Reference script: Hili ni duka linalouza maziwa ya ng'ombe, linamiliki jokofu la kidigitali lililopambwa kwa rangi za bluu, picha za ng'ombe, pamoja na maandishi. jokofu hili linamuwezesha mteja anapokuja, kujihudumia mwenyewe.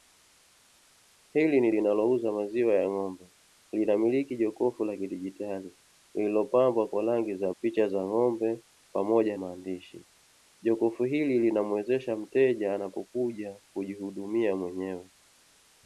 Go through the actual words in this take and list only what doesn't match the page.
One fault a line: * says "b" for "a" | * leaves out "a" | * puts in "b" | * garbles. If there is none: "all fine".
* leaves out "duka"
* leaves out "bluu"
* leaves out "na"